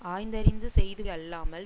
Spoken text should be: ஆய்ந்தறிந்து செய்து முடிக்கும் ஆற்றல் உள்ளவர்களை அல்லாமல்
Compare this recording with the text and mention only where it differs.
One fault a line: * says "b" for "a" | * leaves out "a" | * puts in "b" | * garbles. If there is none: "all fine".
* leaves out "முடிக்கும் ஆற்றல் உள்ளவர்களை"